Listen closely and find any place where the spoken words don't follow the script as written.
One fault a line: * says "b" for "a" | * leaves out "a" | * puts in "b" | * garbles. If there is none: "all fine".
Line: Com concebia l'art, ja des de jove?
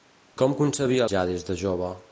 * leaves out "l'art"